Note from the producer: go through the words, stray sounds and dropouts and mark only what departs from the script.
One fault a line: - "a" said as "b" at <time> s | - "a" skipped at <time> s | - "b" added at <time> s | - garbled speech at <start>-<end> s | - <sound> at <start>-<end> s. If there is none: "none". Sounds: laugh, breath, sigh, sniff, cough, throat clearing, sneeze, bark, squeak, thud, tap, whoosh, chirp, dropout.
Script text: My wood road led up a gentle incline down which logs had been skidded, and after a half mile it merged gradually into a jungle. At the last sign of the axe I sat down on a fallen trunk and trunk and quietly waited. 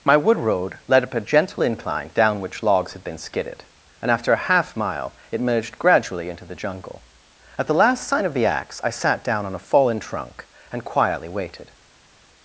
- "a" said as "the" at 6.4 s
- "trunk and" skipped at 10.8 s